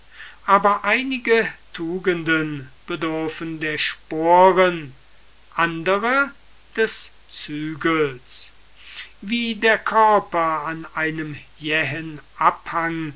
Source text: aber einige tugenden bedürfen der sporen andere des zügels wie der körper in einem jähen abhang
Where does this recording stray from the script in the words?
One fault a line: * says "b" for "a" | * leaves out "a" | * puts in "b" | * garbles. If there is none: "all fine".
* says "an" for "in"